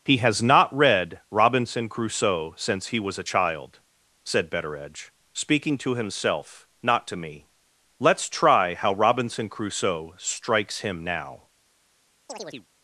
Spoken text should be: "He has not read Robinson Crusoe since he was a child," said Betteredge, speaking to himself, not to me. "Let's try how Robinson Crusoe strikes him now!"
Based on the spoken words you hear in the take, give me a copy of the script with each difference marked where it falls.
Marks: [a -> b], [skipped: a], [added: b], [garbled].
"He has not read Robinson Crusoe since he was a child," said Betteredge, speaking to himself, not to me. "Let's try how Robinson Crusoe strikes him now!"